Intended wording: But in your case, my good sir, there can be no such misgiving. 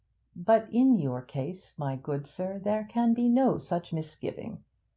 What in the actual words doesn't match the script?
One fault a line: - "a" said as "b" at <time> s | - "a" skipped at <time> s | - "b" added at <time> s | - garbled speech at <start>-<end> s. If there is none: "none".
none